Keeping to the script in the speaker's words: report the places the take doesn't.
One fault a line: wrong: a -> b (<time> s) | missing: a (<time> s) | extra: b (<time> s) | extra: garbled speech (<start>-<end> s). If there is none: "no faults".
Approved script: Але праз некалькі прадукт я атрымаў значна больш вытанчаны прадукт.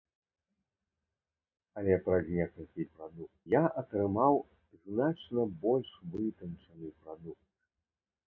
no faults